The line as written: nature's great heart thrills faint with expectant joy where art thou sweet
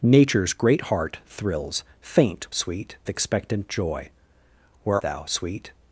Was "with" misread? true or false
true